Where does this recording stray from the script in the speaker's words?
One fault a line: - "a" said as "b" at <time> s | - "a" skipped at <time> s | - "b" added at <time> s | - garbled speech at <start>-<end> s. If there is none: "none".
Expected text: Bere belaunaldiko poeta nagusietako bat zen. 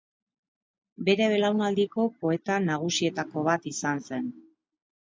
- "izan" added at 3.8 s